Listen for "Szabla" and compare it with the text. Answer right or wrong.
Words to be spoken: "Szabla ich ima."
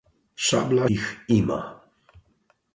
right